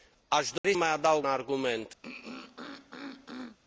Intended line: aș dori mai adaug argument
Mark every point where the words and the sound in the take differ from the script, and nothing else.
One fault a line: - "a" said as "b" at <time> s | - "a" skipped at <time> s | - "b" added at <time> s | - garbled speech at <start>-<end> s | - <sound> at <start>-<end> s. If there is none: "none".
- dropout at 0.6-0.6 s
- throat clearing at 2.0-3.6 s